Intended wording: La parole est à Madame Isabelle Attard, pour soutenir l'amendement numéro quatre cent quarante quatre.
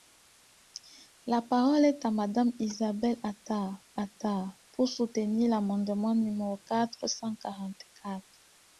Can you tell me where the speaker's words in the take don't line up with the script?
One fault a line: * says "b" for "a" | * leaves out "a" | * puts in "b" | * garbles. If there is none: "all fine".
* puts in "Attard"